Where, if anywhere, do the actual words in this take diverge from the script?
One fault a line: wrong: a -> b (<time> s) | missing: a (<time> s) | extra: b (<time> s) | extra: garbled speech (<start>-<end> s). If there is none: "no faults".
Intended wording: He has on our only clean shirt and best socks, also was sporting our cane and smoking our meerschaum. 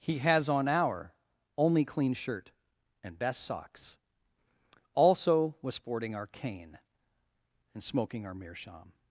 no faults